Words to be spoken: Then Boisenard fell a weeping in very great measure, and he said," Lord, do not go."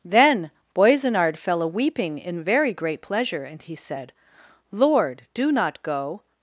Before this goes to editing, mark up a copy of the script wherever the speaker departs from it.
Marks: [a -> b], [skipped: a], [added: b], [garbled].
Then Boisenard fell a weeping in very great [measure, -> pleasure] and he said," Lord, do not go."